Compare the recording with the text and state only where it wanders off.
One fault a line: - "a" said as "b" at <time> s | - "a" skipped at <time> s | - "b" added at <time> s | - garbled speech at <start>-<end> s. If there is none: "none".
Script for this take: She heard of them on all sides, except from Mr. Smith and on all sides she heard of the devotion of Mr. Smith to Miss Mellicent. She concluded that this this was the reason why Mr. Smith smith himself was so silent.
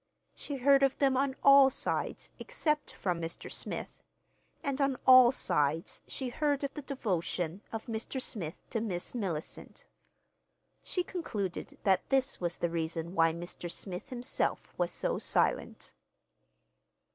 - "this" skipped at 12.4 s
- "smith" skipped at 14.1 s